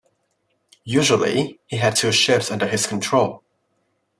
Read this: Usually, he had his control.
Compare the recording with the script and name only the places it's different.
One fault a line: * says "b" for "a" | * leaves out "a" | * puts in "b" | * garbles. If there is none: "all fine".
* puts in "two ships under"